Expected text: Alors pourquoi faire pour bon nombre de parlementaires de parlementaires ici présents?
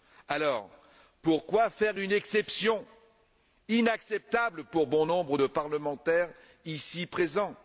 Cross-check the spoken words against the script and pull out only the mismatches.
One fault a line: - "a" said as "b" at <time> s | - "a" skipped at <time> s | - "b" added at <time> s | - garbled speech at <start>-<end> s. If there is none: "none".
- "une exception inacceptable" added at 2.0 s
- "de parlementaires" skipped at 6.3 s